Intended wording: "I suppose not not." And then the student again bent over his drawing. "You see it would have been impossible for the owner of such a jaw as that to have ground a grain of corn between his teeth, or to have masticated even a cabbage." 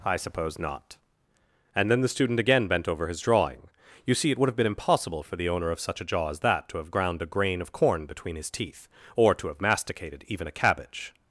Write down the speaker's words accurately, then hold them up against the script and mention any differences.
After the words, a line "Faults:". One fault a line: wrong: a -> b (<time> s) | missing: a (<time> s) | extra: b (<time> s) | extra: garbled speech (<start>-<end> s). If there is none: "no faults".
"I suppose not." And then the student again bent over his drawing. "You see it would have been impossible for the owner of such a jaw as that to have ground a grain of corn between his teeth, or to have masticated even a cabbage."
Faults:
missing: not (1.0 s)